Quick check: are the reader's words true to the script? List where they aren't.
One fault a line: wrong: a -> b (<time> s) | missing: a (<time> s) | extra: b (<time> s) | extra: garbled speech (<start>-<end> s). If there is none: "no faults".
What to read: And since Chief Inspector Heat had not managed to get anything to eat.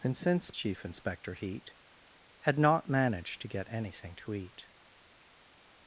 no faults